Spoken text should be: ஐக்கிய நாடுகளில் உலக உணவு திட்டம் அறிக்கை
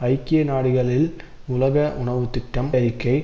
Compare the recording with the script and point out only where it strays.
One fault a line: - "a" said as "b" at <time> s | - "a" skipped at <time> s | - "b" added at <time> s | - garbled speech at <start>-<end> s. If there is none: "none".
none